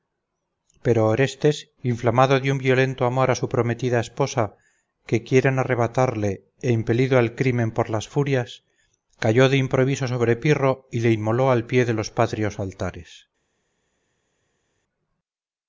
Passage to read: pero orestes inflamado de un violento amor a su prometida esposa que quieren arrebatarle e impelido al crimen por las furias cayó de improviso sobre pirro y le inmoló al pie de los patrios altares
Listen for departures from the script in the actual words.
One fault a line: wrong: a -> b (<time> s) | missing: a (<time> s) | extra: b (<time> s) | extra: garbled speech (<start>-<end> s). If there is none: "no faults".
no faults